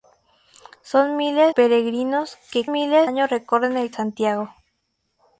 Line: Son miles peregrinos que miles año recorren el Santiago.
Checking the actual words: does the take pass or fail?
pass